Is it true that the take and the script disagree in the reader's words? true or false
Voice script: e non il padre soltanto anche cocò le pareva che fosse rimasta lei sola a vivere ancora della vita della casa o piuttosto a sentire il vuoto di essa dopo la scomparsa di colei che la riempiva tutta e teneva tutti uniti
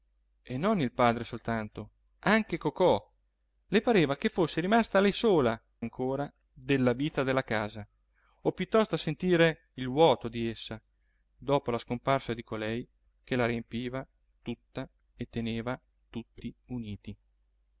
true